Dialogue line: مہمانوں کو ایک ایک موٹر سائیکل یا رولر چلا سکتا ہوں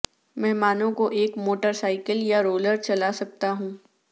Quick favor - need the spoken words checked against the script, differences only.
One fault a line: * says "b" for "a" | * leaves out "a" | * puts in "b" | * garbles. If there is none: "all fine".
* leaves out "ایک"